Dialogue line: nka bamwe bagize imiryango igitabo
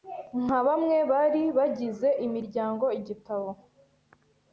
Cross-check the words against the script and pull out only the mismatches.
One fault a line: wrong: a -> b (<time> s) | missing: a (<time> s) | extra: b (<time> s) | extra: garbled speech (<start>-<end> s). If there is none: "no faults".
extra: bari (1.1 s)